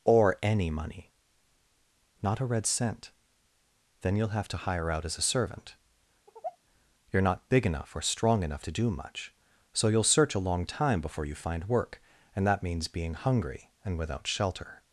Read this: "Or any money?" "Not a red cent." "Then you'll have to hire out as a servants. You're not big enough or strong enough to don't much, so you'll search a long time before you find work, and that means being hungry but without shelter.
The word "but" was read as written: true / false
false